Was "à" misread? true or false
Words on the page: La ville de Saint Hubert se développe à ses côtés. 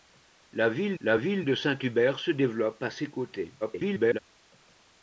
false